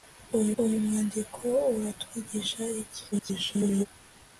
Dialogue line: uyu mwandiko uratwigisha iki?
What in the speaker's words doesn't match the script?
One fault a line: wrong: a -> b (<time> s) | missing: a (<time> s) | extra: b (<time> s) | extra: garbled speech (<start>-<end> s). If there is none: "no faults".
extra: uyu (0.6 s)
extra: garbled speech (3.1-3.9 s)